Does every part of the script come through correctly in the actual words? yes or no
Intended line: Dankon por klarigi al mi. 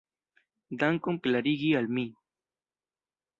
no